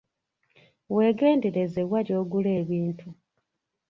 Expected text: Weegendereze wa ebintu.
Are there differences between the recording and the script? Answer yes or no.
yes